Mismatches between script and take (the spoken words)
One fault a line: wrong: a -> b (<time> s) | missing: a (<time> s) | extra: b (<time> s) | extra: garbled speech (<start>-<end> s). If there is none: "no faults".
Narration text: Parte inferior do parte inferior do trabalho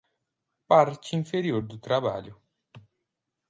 missing: parte inferior do (1.8 s)